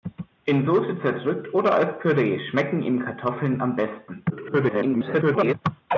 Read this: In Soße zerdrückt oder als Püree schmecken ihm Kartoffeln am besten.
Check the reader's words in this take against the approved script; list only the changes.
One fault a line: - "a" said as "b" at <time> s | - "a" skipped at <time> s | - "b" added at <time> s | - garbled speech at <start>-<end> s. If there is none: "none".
- garbled speech at 4.3-5.5 s